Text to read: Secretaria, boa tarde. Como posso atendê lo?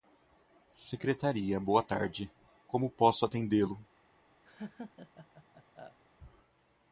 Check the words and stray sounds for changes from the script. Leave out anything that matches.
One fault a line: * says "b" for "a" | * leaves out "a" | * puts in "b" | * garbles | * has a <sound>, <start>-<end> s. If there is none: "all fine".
* has a laugh, 4.4-6.0 s